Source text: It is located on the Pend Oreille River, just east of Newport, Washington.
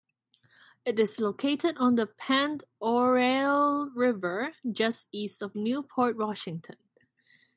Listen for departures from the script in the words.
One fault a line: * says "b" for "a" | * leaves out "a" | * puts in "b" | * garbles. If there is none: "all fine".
all fine